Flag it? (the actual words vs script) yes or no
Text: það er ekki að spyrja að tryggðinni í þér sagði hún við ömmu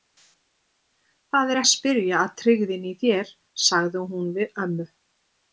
yes